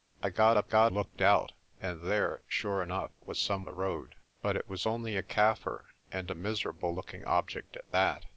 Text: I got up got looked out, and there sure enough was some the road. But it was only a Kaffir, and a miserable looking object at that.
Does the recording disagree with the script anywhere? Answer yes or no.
no